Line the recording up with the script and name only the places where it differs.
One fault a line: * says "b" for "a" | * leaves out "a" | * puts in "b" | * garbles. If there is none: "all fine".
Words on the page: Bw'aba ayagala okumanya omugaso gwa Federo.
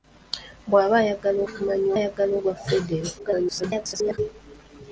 * says "ayagala" for "omugaso"
* garbles